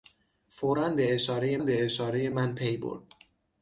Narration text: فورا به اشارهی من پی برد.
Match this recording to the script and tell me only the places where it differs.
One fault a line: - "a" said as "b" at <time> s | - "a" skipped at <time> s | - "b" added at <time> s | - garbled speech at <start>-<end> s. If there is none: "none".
- "به اشارهی" added at 1.6 s